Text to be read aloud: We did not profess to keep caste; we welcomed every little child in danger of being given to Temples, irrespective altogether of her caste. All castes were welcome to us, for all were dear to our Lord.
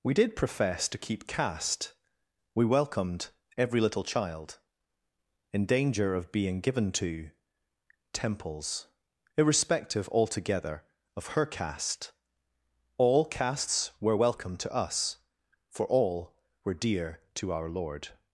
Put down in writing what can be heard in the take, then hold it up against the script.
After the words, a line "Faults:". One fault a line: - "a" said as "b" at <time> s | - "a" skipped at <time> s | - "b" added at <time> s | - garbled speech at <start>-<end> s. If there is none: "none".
We did profess to keep caste; we welcomed every little child in danger of being given to Temples, irrespective altogether of her caste. All castes were welcome to us, for all were dear to our Lord.
Faults:
- "not" skipped at 0.3 s